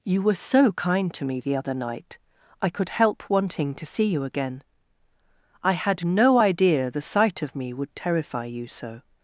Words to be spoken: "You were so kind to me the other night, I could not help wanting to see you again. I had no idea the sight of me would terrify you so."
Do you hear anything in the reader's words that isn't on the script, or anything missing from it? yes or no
yes